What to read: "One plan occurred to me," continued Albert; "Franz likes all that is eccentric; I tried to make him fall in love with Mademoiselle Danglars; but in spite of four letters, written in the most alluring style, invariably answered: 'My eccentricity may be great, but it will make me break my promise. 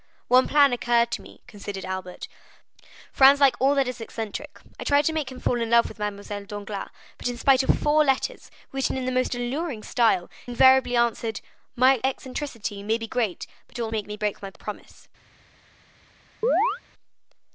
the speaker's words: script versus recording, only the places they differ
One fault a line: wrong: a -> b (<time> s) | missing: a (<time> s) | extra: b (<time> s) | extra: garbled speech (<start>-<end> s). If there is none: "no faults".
no faults